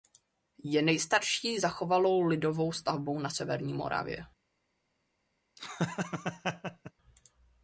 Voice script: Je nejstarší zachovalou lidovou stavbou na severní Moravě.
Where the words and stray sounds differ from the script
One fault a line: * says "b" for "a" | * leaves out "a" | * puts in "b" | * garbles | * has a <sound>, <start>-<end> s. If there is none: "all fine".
* has a laugh, 5.6-6.9 s